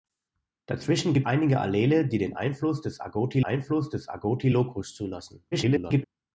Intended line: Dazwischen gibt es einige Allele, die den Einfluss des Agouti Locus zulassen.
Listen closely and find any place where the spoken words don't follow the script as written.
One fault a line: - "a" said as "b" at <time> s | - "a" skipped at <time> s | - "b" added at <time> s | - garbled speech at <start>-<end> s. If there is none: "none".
- "es" skipped at 1.3 s
- "Einfluss des Agouti" added at 3.4 s
- garbled speech at 5.5-6.0 s